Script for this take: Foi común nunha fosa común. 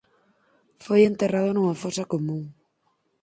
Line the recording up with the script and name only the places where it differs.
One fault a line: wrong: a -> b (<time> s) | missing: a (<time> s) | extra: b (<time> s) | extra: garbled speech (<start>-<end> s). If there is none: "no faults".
wrong: común -> enterrado (1.0 s)